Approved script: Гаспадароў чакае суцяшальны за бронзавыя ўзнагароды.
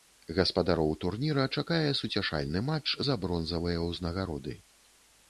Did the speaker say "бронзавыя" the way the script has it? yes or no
yes